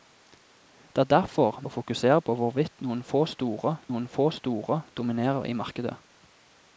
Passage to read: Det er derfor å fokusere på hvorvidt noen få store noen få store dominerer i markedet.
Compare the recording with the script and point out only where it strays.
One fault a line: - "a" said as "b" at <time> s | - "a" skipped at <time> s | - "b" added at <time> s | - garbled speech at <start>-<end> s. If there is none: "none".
none